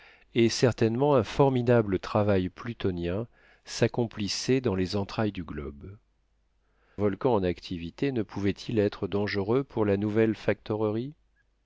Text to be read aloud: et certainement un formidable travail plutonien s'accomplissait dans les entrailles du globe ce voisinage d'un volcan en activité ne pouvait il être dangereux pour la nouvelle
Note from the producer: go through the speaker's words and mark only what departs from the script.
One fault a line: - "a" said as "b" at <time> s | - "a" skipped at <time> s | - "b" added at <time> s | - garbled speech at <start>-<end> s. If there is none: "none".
- "ce voisinage d'un" skipped at 6.0 s